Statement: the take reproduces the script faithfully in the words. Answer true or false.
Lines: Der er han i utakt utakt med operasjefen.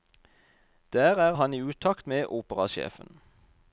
false